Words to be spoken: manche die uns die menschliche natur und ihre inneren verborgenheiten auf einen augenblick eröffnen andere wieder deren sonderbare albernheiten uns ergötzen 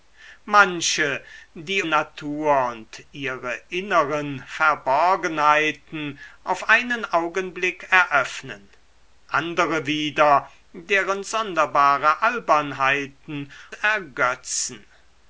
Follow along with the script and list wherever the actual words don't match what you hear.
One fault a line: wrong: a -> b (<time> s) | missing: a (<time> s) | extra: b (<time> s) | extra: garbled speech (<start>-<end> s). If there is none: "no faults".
missing: uns die menschliche (1.8 s)
missing: uns (13.5 s)